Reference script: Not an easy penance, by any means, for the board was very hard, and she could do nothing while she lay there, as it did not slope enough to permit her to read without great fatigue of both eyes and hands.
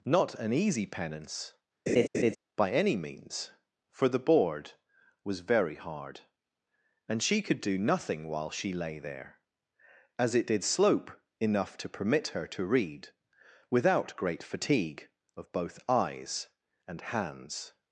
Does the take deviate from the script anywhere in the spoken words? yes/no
yes